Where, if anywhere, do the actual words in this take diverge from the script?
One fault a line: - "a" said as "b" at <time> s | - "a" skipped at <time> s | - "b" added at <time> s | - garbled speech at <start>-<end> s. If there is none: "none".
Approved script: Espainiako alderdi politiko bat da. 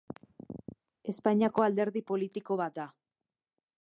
none